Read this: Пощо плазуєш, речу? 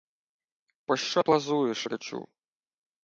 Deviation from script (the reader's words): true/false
false